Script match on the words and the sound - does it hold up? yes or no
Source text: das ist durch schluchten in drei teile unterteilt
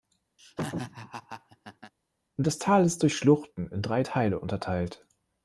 no